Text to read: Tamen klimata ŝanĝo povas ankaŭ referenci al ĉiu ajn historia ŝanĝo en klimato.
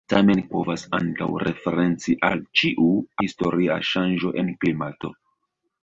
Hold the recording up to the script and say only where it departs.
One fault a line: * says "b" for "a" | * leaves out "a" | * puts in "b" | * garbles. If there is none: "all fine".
* leaves out "klimata ŝanĝo"
* leaves out "ajn"